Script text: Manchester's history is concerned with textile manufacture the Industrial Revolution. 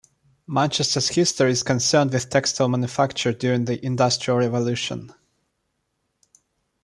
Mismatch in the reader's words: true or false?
true